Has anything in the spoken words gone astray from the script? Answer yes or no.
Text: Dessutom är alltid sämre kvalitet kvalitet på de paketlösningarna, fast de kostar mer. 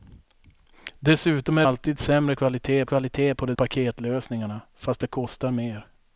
no